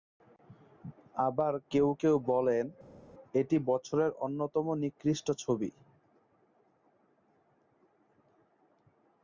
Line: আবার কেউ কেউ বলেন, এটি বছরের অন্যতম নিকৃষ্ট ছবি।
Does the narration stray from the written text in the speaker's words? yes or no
no